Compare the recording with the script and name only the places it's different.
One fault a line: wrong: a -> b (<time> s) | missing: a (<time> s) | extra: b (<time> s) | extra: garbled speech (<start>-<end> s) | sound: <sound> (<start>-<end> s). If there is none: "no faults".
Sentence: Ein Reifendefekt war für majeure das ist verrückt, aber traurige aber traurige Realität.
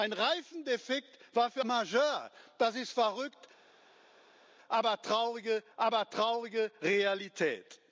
no faults